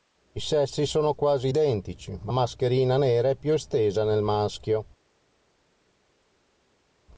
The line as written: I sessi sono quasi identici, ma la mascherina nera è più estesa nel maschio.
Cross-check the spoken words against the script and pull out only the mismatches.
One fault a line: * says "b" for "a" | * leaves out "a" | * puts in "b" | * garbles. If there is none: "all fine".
* leaves out "la"